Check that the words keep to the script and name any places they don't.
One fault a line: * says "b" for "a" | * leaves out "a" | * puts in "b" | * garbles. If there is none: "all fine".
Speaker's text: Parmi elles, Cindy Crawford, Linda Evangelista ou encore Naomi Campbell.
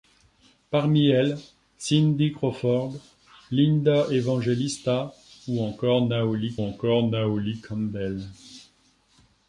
* puts in "encore Naomi"